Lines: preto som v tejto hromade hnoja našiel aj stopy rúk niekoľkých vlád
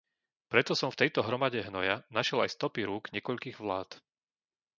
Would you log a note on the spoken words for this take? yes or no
no